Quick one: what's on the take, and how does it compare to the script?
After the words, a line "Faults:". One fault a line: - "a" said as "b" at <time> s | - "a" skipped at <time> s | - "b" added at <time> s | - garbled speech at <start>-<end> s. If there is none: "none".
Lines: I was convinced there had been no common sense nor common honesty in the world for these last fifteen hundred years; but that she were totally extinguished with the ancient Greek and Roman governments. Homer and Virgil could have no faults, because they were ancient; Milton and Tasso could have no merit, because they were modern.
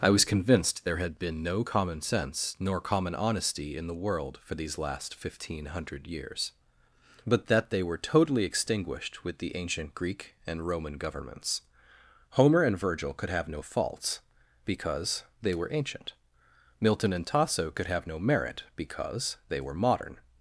I was convinced there had been no common sense nor common honesty in the world for these last fifteen hundred years; but that they were totally extinguished with the ancient Greek and Roman governments. Homer and Virgil could have no faults, because they were ancient; Milton and Tasso could have no merit, because they were modern.
Faults:
- "she" said as "they" at 7.7 s